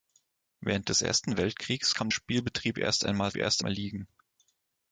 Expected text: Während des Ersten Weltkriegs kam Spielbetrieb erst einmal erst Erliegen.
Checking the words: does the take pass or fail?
pass